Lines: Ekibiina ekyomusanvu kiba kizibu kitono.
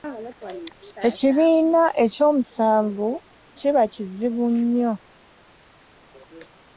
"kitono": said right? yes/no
no